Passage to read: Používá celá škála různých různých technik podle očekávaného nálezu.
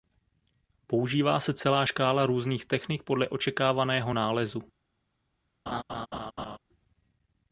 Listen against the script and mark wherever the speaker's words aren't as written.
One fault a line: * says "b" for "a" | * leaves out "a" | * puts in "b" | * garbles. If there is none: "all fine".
* puts in "se"
* leaves out "různých"